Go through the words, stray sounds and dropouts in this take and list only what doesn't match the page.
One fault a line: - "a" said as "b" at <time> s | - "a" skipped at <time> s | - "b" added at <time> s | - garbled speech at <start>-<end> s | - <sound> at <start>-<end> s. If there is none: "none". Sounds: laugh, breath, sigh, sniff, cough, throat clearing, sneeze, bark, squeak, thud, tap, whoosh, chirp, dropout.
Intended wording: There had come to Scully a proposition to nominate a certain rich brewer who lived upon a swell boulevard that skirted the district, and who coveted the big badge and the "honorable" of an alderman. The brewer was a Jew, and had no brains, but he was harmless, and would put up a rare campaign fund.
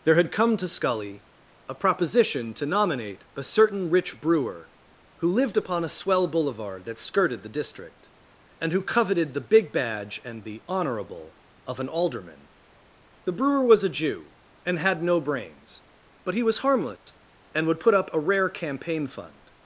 - dropout at 17.0-17.1 s